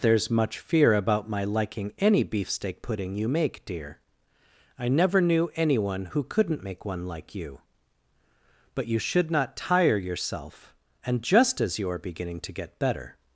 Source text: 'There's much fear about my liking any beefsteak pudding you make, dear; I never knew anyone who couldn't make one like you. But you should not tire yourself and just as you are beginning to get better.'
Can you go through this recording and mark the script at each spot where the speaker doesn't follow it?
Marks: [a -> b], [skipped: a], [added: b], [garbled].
'There's much fear about my liking any beefsteak pudding you make, dear; I never knew anyone who couldn't make one like you. But you should not tire yourself and just as you are beginning to get better.'